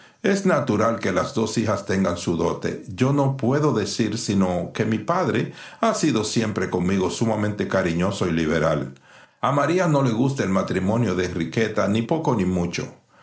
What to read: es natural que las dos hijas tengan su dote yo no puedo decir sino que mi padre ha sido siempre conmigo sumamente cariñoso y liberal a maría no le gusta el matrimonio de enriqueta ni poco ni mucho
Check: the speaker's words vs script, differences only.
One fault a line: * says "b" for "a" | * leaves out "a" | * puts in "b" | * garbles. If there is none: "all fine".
all fine